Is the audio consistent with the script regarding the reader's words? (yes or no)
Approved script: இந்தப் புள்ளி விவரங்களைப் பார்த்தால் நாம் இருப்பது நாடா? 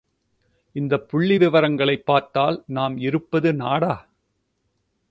yes